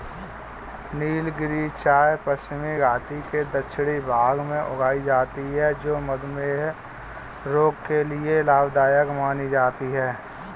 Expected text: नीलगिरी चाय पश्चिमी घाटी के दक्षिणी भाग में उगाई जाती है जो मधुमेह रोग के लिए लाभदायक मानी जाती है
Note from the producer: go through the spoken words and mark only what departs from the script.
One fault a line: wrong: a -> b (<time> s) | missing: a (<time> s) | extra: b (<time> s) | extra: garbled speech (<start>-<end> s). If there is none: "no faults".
no faults